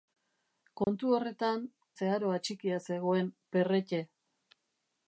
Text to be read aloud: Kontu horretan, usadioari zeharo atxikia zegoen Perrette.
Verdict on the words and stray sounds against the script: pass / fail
fail